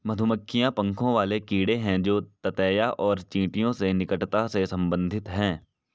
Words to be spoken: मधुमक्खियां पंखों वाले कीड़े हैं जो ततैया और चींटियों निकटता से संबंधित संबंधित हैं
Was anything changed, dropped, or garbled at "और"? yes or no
no